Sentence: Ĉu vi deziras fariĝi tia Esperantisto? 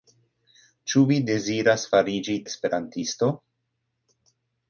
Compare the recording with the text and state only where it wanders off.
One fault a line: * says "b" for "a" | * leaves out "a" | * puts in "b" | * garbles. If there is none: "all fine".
* leaves out "tia"